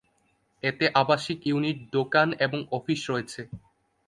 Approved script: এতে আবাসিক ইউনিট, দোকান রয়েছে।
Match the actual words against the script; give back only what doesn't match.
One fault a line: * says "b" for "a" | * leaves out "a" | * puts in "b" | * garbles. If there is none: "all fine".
* puts in "এবং অফিস"